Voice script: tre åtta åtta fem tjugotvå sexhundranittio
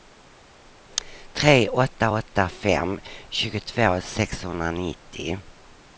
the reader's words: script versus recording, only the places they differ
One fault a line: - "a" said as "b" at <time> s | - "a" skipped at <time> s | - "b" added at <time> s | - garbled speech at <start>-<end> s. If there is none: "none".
none